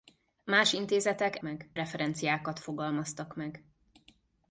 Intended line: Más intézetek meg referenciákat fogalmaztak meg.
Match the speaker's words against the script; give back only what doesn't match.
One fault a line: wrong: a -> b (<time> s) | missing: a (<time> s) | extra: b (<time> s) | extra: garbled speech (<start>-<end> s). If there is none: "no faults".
no faults